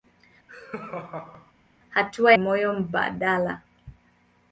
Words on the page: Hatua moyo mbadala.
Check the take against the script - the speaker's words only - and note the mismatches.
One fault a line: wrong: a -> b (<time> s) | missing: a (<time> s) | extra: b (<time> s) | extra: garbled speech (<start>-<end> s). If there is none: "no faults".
no faults